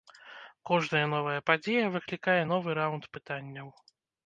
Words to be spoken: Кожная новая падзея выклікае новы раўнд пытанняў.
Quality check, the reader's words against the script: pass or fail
pass